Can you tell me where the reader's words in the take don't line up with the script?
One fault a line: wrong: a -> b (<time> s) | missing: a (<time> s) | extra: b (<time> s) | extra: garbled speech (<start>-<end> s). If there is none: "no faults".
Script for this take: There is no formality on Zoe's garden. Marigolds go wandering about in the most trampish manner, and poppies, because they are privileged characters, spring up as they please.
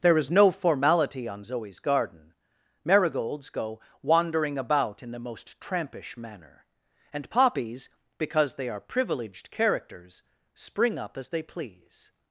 no faults